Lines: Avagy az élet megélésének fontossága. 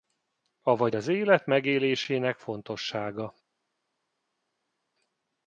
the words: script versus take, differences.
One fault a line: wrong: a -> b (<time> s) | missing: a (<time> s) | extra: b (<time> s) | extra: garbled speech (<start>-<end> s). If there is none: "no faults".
no faults